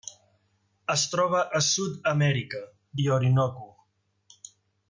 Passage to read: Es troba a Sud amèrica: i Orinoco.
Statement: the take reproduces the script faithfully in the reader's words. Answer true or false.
true